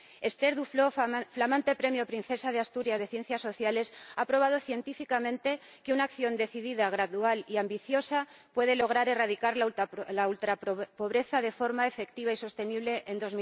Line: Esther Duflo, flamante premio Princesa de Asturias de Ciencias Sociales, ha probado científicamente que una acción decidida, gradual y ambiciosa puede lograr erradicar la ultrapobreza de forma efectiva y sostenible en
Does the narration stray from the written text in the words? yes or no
no